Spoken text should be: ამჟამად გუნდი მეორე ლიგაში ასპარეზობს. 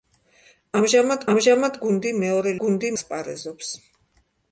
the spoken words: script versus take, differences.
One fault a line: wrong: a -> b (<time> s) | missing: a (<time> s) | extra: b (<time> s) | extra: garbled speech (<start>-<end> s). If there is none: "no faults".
extra: ამჟამად (1.3 s)
wrong: ლიგაში -> გუნდი (2.6 s)